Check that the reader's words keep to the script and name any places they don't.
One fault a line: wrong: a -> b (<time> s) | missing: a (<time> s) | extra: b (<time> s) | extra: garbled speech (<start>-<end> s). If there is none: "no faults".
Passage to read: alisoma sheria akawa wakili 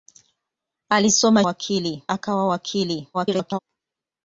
wrong: sheria -> wakili (1.4 s)
extra: garbled speech (3.1-3.6 s)